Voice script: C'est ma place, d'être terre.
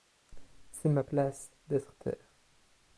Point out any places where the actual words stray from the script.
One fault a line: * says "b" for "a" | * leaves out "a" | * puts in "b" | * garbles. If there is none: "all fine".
all fine